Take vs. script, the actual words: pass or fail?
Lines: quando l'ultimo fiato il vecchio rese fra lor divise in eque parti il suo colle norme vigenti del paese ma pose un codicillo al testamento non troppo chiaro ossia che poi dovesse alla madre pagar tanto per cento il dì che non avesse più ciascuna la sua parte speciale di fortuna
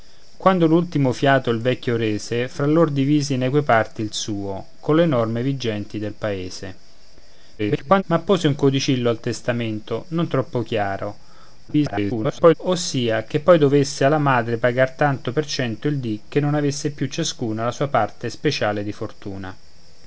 fail